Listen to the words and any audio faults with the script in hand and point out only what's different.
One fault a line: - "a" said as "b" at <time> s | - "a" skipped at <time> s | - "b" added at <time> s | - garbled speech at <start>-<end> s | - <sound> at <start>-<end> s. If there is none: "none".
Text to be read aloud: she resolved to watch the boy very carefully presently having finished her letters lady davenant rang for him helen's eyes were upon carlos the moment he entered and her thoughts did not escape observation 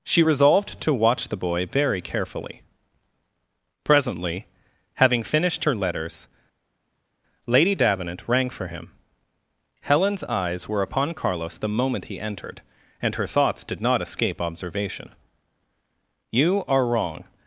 - "you are wrong" added at 16.3 s